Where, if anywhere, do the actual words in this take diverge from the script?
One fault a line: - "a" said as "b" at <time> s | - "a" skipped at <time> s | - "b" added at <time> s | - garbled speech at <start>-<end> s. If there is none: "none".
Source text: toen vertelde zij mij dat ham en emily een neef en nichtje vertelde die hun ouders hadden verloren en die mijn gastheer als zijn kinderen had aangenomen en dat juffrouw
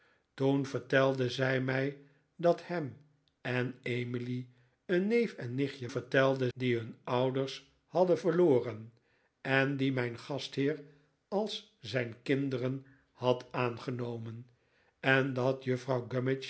none